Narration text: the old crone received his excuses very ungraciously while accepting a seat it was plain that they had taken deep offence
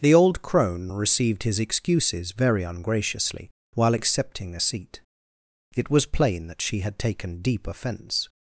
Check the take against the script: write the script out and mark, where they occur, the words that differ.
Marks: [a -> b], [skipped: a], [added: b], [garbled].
the old crone received his excuses very ungraciously while accepting a seat it was plain that [they -> she] had taken deep offence